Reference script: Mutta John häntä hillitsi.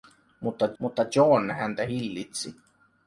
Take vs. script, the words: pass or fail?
fail